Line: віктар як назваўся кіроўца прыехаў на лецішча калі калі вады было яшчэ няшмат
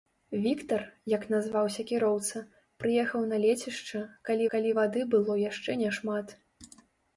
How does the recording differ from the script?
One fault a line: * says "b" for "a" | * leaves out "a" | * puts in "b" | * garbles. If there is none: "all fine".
all fine